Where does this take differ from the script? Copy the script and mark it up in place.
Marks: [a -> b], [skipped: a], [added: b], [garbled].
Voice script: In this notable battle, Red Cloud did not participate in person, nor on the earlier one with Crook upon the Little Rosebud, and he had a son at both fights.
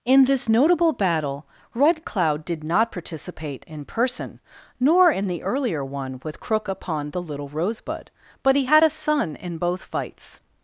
In this notable battle, Red Cloud did not participate in person, nor [on -> in] the earlier one with Crook upon the Little Rosebud, [and -> but] he had a son [at -> in] both fights.